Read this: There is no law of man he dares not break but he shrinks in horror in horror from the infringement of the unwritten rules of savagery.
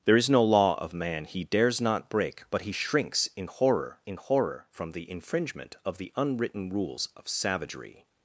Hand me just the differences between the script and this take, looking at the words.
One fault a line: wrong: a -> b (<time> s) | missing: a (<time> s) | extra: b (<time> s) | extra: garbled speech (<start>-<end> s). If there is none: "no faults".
no faults